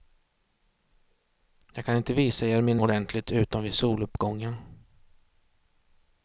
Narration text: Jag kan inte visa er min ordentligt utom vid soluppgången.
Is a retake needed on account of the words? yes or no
no